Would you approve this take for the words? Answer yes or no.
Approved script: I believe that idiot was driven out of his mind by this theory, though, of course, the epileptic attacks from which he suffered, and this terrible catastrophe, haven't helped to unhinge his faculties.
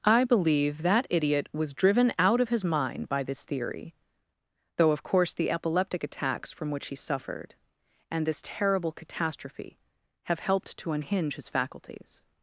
no